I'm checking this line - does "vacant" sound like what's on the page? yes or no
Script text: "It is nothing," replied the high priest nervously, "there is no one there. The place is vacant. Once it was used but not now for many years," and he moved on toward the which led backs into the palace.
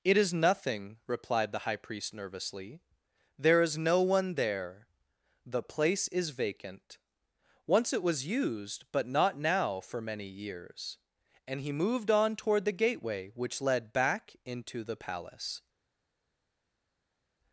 yes